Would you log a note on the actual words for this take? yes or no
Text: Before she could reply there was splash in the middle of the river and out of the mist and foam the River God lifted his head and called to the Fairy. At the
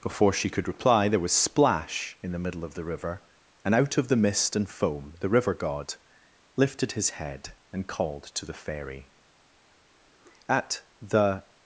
no